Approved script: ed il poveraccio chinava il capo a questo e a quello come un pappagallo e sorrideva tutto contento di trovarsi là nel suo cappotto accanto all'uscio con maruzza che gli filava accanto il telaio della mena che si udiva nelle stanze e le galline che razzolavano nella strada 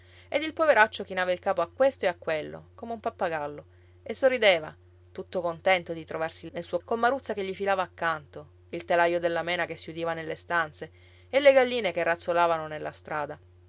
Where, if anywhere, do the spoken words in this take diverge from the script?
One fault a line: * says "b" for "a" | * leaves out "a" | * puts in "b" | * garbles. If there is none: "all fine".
* leaves out "là"
* leaves out "cappotto accanto all'uscio"